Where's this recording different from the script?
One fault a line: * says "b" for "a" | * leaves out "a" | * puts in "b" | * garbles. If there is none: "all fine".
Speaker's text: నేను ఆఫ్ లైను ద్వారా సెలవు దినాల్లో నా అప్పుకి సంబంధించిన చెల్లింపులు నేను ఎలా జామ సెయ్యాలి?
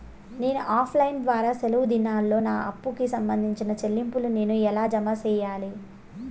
all fine